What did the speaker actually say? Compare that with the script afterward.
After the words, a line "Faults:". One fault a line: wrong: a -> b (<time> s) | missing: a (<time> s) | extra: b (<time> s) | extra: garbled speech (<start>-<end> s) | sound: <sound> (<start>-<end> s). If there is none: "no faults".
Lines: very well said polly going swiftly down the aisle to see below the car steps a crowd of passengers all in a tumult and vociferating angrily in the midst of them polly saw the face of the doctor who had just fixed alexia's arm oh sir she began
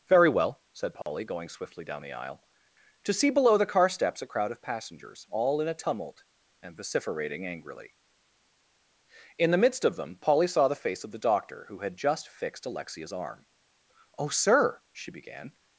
very well said polly going swiftly down the aisle to see below the car steps a crowd of passengers all in a tumult and vociferating angrily in the midst of them polly saw the face of the doctor who had just fixed alexia's arm oh sir she began
Faults:
sound: dropout (1.0-1.1 s)